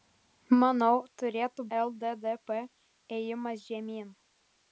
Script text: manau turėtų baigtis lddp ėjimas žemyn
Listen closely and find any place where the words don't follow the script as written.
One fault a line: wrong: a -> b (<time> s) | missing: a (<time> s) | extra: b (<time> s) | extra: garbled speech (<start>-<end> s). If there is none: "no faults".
missing: baigtis (1.6 s)